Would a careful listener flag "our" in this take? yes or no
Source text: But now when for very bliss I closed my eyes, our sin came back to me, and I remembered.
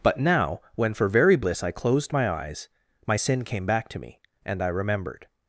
yes